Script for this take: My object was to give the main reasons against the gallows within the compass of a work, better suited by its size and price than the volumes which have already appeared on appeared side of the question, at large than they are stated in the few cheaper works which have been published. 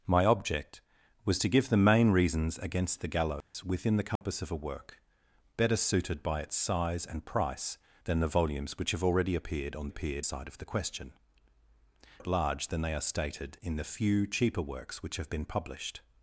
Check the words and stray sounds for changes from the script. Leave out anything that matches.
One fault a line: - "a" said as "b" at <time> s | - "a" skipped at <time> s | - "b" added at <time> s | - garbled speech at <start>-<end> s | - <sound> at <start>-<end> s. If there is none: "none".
- dropout at 3.4-3.5 s
- dropout at 4.2-4.2 s